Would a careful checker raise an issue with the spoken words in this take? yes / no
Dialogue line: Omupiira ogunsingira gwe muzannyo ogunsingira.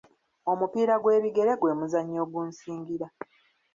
yes